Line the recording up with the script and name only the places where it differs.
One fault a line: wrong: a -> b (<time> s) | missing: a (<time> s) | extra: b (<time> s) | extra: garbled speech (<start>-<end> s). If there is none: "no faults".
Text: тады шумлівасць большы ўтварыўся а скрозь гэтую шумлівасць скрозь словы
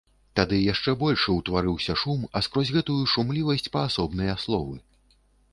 wrong: шумлівасць -> яшчэ (0.7 s)
extra: шум (2.0 s)
wrong: скрозь -> паасобныя (3.8 s)